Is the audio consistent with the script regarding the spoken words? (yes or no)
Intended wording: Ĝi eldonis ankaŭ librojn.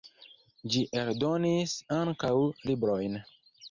yes